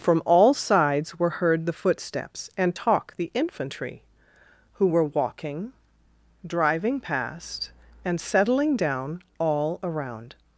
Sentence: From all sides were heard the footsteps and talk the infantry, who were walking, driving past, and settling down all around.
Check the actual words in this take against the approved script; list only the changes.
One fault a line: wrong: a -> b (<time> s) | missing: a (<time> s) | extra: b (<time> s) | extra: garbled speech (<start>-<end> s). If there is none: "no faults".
no faults